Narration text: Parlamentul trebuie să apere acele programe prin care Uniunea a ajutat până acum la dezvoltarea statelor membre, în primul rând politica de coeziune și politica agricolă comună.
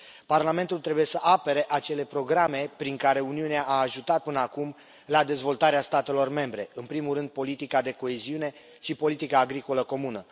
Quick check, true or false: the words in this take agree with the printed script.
true